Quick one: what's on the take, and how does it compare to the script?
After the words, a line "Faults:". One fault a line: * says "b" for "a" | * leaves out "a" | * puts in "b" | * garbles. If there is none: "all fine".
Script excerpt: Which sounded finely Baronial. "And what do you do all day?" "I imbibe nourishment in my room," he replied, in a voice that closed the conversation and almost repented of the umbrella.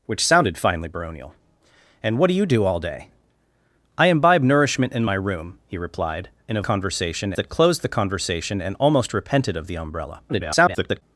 Which sounded finely Baronial. "And what do you do all day?" "I imbibe nourishment in my room," he replied, in a conversation that closed the conversation and almost repented of the umbrella. [garbled]
Faults:
* says "conversation" for "voice"
* garbles